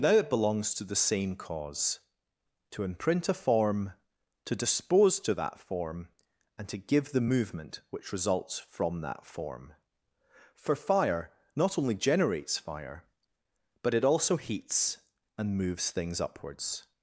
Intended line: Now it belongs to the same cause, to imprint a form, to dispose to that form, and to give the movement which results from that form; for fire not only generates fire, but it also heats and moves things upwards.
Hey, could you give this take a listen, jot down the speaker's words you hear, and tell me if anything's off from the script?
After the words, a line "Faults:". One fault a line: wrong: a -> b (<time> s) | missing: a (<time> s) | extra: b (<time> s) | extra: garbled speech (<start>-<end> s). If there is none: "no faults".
Now it belongs to the same cause, to imprint a form, to dispose to that form, and to give the movement which results from that form; for fire not only generates fire, but it also heats and moves things upwards.
Faults:
no faults